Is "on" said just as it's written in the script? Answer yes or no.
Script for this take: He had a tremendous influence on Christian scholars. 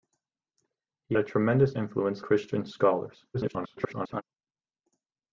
no